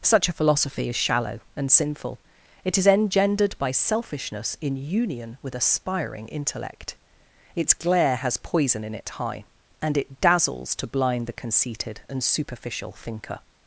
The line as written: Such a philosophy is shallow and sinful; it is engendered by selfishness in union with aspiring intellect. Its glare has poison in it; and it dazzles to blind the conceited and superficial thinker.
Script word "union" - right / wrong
right